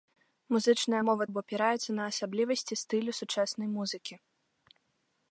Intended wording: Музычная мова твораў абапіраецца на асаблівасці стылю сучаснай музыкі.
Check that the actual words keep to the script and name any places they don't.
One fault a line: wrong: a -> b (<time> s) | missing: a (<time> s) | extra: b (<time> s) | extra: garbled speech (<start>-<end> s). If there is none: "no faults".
missing: твораў (1.2 s)